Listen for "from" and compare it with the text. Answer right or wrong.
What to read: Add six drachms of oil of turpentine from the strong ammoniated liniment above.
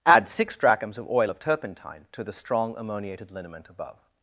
wrong